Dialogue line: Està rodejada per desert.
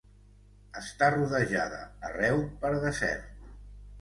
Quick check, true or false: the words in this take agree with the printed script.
false